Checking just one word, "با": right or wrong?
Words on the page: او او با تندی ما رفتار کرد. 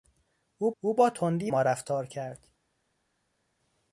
right